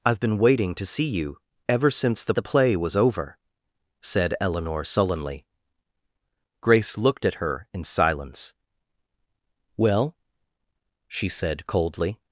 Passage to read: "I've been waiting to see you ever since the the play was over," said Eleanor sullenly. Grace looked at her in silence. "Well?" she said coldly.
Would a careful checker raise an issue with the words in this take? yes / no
no